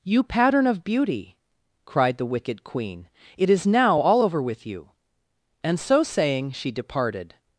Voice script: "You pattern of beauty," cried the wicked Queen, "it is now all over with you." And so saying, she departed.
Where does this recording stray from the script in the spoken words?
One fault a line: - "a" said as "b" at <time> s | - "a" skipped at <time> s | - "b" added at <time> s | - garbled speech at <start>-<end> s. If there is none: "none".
none